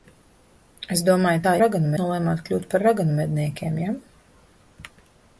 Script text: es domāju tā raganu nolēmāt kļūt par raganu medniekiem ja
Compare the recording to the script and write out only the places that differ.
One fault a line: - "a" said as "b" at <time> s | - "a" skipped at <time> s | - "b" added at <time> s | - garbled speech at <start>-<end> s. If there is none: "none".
none